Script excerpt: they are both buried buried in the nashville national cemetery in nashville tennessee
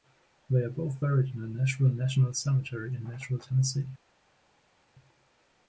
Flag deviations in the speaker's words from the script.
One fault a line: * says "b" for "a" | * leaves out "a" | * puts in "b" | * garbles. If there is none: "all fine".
* leaves out "buried"